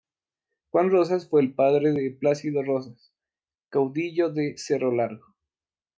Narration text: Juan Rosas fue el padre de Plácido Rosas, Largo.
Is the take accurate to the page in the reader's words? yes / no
no